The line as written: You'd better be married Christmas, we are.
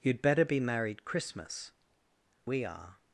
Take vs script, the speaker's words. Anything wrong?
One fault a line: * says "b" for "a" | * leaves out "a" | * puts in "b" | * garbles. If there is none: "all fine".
all fine